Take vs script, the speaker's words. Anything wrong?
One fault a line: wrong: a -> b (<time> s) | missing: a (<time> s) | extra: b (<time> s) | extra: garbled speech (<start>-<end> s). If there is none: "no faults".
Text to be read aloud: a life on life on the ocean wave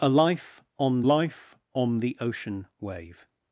no faults